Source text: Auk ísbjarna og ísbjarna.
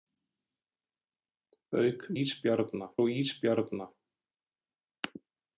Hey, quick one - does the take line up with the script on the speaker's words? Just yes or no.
yes